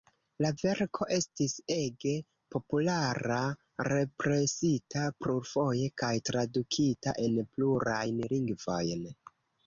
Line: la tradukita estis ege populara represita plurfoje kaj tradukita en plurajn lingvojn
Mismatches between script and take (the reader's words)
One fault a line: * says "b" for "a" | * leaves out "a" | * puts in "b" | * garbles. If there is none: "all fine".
* says "verko" for "tradukita"